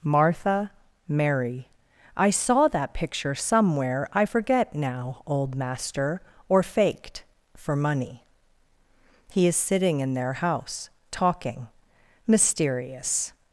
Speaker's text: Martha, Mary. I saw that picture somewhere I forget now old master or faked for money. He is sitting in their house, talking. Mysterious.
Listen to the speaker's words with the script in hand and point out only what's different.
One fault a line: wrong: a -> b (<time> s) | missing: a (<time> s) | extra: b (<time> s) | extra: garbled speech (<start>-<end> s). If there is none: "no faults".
no faults